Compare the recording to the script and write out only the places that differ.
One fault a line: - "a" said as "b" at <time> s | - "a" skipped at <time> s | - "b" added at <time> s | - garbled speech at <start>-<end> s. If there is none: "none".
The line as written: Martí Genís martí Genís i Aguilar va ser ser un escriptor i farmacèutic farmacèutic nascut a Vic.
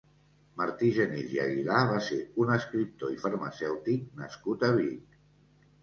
- "martí Genís" skipped at 1.4 s
- "ser" skipped at 2.2 s
- "farmacèutic" skipped at 4.1 s